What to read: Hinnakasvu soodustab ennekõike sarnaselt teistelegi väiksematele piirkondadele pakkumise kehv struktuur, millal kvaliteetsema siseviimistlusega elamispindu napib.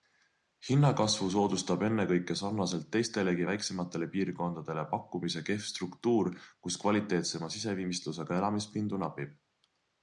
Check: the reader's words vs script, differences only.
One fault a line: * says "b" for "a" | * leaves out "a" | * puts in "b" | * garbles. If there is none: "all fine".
* says "kus" for "millal"